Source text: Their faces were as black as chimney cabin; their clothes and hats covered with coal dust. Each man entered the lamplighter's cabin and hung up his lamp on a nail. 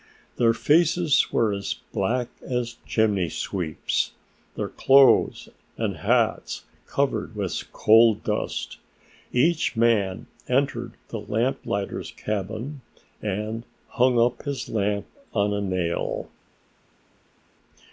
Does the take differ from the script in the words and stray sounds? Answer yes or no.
yes